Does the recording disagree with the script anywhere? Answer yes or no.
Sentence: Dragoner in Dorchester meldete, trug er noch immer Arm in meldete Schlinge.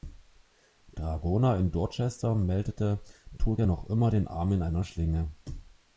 yes